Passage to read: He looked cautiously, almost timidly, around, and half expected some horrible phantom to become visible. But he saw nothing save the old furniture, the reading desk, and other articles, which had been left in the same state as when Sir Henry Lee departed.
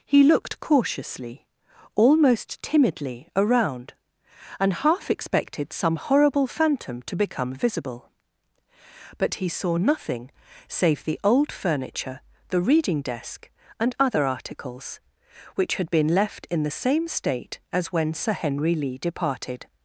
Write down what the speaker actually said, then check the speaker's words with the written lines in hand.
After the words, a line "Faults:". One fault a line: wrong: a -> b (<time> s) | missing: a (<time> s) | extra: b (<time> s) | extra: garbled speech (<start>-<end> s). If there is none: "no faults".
He looked cautiously, almost timidly, around, and half expected some horrible phantom to become visible. But he saw nothing save the old furniture, the reading desk, and other articles, which had been left in the same state as when Sir Henry Lee departed.
Faults:
no faults